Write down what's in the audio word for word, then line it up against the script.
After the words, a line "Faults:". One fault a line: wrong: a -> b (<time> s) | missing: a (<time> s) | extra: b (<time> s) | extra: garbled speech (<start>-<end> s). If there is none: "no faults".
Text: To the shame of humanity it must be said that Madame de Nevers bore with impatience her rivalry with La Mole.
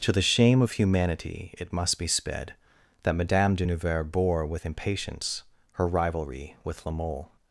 To the shame of humanity it must be sped that Madame de Nevers bore with impatience her rivalry with La Mole.
Faults:
wrong: said -> sped (2.1 s)